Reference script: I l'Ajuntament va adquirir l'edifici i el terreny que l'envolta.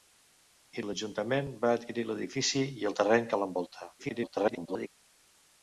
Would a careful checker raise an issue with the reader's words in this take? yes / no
yes